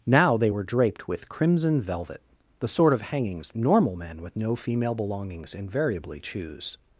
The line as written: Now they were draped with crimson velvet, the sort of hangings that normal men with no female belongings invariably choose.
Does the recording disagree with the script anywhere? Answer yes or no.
yes